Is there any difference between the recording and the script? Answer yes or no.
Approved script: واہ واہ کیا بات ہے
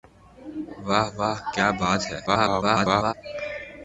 yes